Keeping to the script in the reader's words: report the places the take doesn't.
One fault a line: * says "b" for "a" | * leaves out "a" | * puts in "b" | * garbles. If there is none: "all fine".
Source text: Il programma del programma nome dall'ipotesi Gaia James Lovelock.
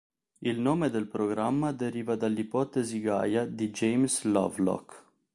* says "nome" for "programma"
* says "deriva" for "nome"
* puts in "di"